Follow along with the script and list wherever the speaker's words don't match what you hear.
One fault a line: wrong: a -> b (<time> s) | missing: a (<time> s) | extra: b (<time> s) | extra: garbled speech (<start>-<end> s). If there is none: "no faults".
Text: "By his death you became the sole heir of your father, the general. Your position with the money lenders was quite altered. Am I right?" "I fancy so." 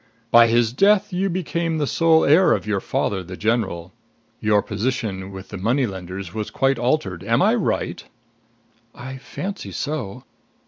no faults